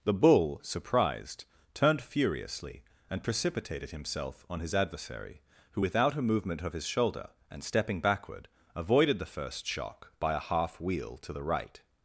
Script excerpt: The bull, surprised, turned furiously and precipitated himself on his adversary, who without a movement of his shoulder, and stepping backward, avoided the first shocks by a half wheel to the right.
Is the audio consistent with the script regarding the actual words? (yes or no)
no